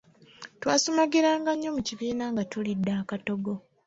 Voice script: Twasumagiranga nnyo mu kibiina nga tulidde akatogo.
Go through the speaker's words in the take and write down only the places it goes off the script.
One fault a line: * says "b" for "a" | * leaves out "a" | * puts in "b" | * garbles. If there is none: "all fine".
all fine